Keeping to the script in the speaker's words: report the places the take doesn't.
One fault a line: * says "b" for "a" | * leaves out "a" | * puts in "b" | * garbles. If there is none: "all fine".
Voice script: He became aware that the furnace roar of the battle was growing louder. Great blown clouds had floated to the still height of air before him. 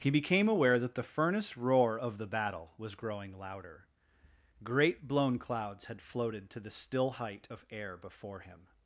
all fine